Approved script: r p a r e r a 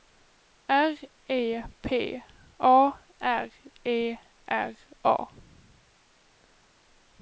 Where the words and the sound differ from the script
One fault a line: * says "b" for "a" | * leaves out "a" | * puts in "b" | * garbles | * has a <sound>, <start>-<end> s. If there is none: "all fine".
* puts in "e"